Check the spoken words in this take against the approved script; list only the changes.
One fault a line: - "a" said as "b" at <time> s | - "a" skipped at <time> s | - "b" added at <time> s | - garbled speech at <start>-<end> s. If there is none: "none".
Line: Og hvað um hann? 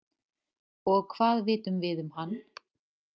- "vitum við" added at 1.5 s